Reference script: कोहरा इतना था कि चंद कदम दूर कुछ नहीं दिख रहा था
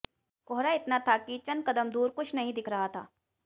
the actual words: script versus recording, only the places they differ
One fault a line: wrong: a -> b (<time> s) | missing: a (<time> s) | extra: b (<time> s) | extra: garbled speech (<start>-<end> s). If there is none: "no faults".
no faults